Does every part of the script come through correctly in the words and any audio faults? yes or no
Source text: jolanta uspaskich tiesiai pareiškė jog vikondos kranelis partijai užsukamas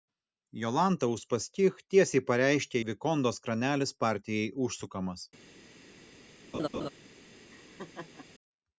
no